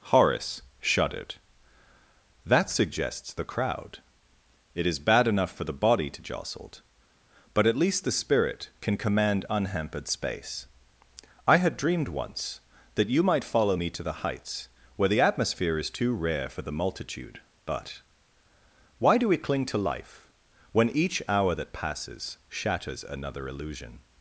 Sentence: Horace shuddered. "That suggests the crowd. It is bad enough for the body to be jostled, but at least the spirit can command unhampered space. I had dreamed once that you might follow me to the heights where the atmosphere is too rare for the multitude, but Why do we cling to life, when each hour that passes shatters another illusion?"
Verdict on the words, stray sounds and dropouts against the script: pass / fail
fail